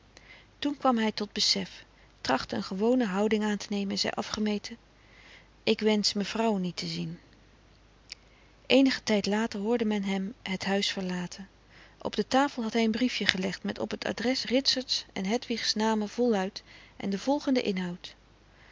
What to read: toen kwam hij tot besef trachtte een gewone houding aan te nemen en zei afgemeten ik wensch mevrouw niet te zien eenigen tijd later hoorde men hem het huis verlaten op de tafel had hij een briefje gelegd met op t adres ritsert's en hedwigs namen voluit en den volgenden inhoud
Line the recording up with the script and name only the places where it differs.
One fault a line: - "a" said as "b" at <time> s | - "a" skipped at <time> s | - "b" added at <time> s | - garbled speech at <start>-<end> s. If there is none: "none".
none